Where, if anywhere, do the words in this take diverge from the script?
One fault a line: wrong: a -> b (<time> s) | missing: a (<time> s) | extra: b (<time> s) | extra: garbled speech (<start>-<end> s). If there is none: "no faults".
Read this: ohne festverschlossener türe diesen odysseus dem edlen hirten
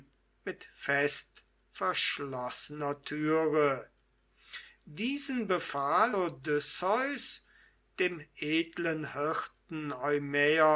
wrong: ohne -> mit (0.5 s)
extra: befahl (5.5 s)